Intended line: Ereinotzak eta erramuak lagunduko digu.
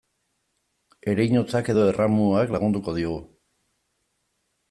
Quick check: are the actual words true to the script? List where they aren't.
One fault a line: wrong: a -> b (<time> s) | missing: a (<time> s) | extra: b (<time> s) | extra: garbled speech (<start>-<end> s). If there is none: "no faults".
wrong: eta -> edo (1.7 s)